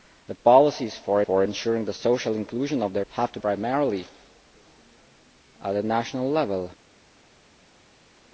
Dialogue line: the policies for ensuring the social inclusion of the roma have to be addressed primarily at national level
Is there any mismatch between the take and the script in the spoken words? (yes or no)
yes